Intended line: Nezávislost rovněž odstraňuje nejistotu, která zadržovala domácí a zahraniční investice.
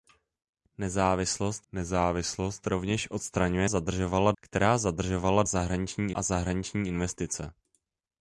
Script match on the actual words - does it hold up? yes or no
no